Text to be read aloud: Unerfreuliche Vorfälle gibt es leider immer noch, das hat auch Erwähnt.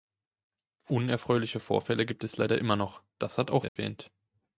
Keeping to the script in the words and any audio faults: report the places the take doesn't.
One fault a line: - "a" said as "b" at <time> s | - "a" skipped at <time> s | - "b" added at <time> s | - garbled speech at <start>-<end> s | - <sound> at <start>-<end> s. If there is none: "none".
- dropout at 3.7-3.8 s